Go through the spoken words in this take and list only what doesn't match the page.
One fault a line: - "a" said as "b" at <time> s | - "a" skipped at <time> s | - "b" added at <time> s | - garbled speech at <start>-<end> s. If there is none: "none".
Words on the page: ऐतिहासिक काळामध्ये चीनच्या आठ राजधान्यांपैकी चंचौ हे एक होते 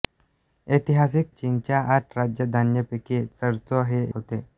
- "काळामध्ये" skipped at 1.3 s
- "एक" skipped at 4.0 s